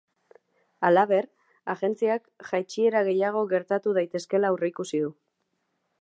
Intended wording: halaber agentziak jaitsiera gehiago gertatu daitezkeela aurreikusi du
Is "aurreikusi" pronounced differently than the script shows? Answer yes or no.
no